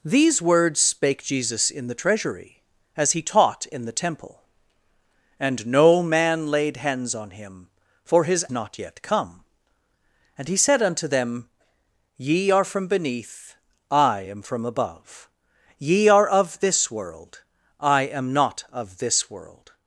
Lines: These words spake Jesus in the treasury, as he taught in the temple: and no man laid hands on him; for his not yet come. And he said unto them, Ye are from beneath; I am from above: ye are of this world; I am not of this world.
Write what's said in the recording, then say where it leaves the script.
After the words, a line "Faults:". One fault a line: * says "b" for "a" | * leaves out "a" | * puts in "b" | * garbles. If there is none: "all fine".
These words spake Jesus in the treasury, as he taught in the temple: and no man laid hands on him; for his not yet come. And he said unto them, Ye are from beneath; I am from above: ye are of this world; I am not of this world.
Faults:
all fine